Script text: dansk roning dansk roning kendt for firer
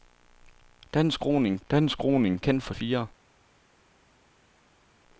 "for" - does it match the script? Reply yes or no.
yes